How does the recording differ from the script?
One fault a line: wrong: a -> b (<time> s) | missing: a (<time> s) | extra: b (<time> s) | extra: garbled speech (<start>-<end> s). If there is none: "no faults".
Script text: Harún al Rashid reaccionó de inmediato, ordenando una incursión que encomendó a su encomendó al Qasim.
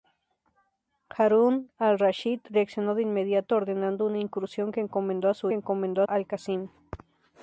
no faults